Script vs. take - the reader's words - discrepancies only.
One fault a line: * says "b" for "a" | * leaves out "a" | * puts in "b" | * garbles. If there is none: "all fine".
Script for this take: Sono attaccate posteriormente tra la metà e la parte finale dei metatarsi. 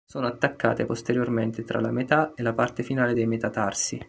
all fine